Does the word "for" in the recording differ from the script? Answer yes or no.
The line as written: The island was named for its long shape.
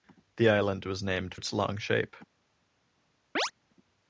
yes